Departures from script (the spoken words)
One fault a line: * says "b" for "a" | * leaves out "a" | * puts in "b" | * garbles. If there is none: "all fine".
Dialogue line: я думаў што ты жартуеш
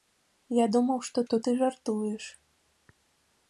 * puts in "што"